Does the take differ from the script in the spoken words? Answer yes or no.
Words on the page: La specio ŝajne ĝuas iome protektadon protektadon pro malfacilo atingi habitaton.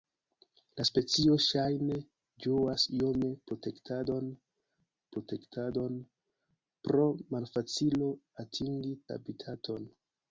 no